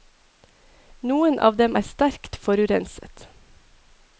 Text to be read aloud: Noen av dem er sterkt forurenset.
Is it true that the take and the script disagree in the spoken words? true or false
false